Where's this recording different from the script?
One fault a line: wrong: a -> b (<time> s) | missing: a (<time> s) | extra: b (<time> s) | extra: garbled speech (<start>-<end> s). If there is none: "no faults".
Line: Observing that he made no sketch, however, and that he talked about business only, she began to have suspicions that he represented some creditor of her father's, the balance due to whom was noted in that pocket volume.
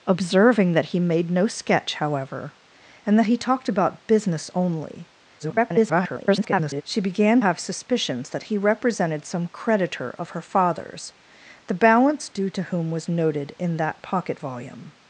extra: garbled speech (5.4-6.8 s)
missing: to (7.4 s)